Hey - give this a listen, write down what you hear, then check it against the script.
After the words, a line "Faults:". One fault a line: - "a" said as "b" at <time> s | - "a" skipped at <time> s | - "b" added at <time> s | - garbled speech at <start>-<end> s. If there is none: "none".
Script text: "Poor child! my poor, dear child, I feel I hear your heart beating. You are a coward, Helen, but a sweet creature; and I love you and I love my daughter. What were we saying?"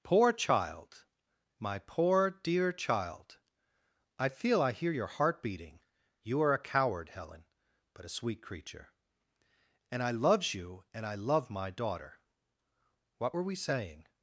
"Poor child! my poor, dear child, I feel I hear your heart beating. You are a coward, Helen, but a sweet creature; and I loves you and I love my daughter. What were we saying?"
Faults:
- "love" said as "loves" at 10.1 s